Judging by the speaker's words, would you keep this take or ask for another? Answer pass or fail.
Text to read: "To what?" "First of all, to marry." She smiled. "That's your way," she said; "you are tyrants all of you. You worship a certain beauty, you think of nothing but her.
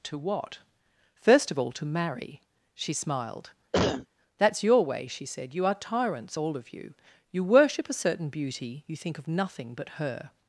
pass